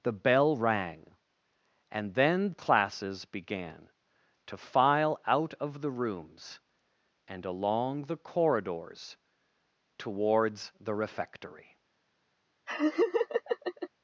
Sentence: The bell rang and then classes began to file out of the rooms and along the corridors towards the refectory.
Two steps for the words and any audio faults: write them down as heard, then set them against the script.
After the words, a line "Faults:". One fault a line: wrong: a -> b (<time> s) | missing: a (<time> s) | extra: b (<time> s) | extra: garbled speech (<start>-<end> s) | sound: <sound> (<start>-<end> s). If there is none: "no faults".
The bell rang and then classes began to file out of the rooms and along the corridors towards the refectory.
Faults:
sound: laugh (12.7-13.9 s)